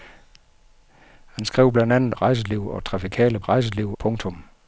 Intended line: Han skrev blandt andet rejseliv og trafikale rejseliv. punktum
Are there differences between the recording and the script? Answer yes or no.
no